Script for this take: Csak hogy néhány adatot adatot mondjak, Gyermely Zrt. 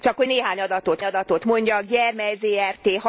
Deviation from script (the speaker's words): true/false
false